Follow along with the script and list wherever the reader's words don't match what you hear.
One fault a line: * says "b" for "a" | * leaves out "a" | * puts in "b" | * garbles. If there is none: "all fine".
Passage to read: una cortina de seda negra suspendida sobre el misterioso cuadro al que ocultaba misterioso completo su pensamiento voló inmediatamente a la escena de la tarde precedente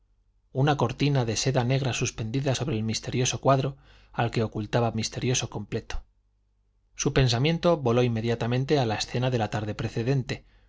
all fine